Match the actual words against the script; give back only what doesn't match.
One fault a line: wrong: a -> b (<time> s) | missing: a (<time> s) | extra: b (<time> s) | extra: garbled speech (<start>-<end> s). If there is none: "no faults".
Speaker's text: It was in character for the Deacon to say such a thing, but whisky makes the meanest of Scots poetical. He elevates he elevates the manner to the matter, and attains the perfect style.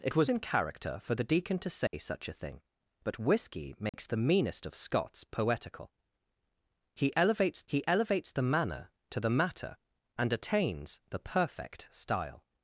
no faults